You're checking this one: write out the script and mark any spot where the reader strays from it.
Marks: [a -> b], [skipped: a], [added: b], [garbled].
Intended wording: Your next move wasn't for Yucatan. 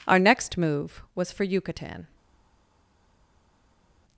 [Your -> Our] next move [wasn't -> was] for Yucatan.